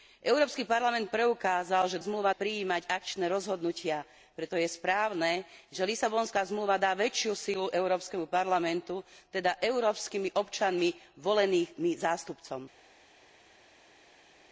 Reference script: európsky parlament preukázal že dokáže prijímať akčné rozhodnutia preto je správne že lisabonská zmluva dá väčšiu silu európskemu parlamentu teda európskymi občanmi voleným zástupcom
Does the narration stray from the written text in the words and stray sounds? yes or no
yes